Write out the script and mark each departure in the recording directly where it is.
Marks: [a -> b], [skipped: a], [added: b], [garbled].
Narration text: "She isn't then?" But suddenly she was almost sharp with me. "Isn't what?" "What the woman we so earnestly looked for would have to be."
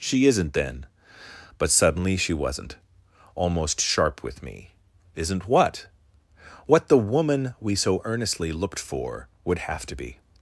"She isn't then?" But suddenly she [was -> wasn't] almost sharp with me. "Isn't what?" "What the woman we so earnestly looked for would have to be."